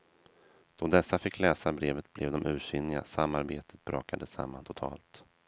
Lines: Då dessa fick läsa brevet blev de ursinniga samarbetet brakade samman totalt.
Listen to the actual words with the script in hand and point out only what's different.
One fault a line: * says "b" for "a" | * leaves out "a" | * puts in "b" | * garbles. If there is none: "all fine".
all fine